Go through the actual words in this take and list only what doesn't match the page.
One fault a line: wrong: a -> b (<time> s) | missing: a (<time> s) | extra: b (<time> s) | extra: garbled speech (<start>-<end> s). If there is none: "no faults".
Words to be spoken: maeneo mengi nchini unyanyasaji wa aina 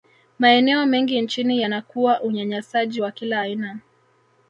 extra: yanakuwa (1.6 s)
extra: kila (3.1 s)